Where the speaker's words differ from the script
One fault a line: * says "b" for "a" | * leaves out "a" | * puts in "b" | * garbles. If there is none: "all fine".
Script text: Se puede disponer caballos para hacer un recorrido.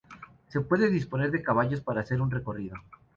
* puts in "de"